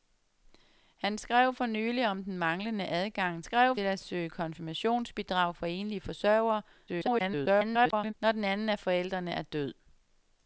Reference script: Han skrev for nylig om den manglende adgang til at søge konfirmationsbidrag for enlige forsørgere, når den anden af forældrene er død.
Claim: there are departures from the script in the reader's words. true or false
true